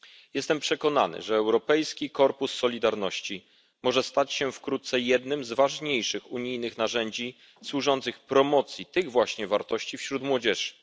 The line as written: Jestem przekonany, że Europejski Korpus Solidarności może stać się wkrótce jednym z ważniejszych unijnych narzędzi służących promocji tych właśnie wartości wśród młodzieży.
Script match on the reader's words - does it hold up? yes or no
yes